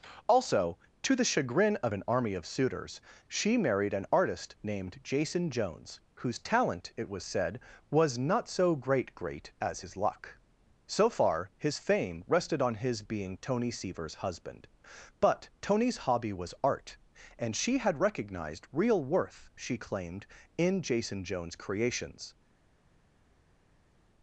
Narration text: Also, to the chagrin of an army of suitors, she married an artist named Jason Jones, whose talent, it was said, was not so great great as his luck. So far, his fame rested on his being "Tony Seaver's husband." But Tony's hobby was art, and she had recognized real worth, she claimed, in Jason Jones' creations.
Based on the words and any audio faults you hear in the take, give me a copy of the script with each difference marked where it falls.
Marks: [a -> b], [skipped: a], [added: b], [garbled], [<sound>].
Also, to the chagrin of an army of suitors, she married an artist named Jason Jones, whose talent, it was said, was not so great great as his luck. So far, his fame rested on his being "Tony Seaver's husband." But Tony's hobby was art, and she had recognized real worth, she claimed, in Jason Jones' creations.